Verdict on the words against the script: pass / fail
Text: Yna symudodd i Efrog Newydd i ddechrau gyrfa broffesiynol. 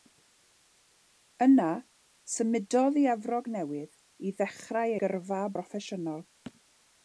pass